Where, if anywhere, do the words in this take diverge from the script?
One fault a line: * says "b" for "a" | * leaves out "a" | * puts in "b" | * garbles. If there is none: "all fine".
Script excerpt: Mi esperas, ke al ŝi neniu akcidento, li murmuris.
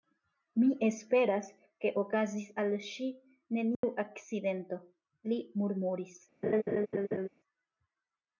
* puts in "okazis"